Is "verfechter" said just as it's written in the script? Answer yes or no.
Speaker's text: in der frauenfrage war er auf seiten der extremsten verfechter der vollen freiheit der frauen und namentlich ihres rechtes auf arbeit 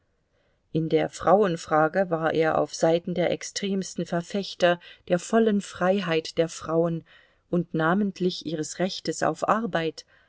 yes